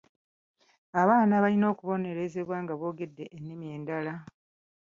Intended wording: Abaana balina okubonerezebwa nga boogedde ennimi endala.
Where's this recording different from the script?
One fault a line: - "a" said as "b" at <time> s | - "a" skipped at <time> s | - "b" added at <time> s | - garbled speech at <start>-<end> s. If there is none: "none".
none